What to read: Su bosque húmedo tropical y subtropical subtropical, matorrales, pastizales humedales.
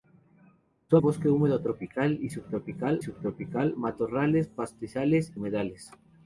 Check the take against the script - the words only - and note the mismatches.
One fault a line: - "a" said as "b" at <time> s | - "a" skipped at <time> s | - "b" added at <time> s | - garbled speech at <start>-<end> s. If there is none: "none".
none